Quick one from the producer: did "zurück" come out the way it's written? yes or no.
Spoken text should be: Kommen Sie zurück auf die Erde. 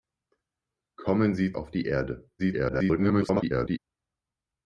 no